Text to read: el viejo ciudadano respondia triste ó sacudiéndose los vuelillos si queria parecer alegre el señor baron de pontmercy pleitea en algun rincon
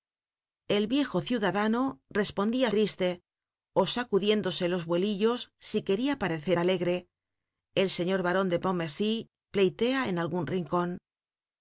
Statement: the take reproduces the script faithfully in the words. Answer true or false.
true